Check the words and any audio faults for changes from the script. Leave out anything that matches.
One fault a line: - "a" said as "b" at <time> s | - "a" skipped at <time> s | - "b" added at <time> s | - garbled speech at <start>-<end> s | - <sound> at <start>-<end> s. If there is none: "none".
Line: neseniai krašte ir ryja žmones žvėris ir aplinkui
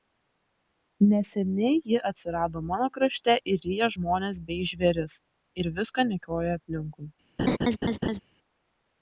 - "ji atsirado mano" added at 1.9 s
- "bei" added at 4.5 s
- "viską niokoja" added at 5.8 s
- laugh at 7.4-8.2 s